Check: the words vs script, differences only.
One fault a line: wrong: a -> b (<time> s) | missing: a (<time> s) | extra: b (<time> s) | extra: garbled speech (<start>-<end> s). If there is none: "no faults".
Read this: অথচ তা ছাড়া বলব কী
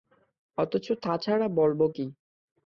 no faults